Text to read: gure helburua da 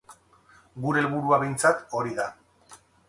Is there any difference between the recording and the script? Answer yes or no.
yes